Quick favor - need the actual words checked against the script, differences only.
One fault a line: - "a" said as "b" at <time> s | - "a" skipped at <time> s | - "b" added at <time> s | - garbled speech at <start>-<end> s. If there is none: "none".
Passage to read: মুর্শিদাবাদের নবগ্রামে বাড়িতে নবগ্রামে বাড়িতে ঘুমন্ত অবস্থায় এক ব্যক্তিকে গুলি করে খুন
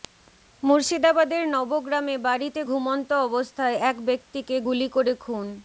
- "নবগ্রামে বাড়িতে" skipped at 2.6 s